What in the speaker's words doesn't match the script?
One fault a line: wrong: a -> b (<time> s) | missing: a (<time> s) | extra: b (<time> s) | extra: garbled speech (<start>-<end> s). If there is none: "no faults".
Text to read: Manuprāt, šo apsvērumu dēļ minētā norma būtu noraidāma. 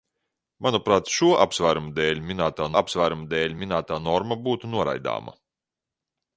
extra: apsvērumu dēļ minētā (2.8 s)